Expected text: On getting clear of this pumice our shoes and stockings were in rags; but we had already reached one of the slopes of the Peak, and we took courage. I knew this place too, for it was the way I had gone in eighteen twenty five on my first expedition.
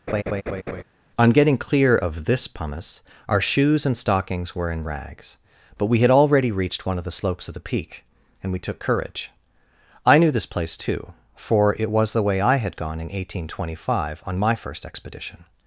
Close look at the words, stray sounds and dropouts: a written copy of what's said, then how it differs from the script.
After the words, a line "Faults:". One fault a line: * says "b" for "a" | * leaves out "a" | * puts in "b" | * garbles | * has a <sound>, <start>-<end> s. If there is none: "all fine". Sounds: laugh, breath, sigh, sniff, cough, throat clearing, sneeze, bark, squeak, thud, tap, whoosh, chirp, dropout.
On getting clear of this pumice our shoes and stockings were in rags; but we had already reached one of the slopes of the Peak, and we took courage. I knew this place too, for it was the way I had gone in eighteen twenty five on my first expedition.
Faults:
* has a laugh, 0.1-0.8 s